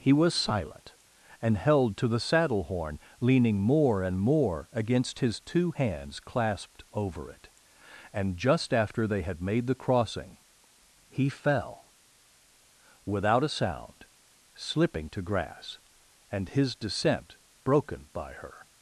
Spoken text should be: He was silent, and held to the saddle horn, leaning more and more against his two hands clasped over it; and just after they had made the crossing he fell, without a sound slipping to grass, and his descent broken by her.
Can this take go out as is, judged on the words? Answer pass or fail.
pass